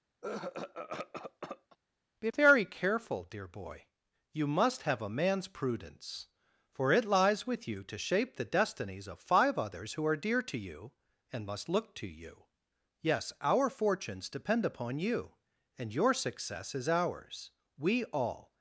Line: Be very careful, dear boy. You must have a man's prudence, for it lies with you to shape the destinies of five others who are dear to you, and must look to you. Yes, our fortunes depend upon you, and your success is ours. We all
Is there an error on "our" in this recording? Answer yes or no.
no